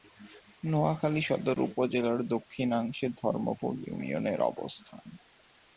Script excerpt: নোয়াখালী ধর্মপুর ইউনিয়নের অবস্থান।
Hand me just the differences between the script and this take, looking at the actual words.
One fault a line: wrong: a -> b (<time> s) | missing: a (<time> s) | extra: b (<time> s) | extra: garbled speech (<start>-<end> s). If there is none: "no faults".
extra: সদর উপজেলার দক্ষিণাংশে (1.2 s)